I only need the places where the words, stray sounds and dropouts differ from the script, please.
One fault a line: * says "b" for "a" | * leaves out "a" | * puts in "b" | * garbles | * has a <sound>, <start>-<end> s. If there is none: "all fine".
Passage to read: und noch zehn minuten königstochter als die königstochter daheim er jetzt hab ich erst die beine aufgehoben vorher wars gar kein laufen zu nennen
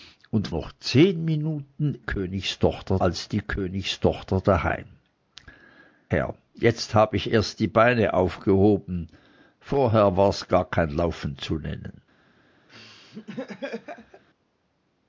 * has a laugh, 12.7-14.2 s